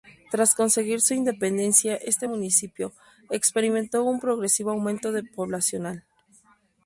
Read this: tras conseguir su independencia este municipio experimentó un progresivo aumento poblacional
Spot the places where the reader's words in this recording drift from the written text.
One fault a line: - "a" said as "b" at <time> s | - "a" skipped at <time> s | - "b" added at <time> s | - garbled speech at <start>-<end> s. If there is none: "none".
none